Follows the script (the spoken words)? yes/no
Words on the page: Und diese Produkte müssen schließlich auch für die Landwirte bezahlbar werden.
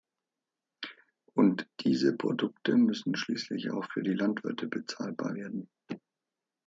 yes